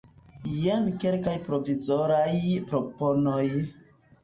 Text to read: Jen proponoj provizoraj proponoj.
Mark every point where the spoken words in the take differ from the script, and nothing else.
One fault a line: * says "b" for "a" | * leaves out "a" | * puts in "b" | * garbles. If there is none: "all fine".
* says "kelkaj" for "proponoj"